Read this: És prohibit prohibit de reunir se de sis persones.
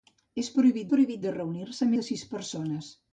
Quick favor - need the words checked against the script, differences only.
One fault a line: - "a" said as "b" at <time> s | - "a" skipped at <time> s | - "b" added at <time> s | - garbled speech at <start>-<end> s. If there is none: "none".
none